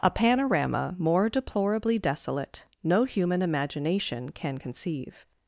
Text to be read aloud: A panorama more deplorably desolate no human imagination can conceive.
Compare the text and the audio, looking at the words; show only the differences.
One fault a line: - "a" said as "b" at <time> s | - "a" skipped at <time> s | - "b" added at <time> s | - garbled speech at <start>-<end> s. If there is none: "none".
none